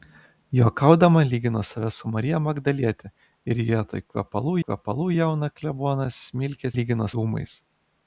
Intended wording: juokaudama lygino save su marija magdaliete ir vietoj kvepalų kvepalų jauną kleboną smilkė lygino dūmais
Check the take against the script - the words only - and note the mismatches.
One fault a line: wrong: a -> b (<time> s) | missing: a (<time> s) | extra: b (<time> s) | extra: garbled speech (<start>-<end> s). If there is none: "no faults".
no faults